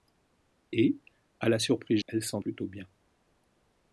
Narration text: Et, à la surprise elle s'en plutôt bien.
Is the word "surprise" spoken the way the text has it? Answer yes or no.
yes